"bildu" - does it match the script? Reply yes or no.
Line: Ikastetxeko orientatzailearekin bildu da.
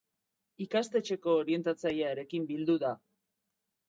yes